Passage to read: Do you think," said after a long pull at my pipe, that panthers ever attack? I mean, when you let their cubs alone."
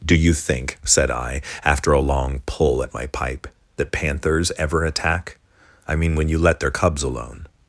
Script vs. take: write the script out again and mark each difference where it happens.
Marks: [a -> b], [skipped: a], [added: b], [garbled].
Do you think," said [added: I] after a long pull at my pipe, that panthers ever attack? I mean, when you let their cubs alone."